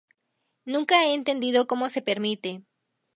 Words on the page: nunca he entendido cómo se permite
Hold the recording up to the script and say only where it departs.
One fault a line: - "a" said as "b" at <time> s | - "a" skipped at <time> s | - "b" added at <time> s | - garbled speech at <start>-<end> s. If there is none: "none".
none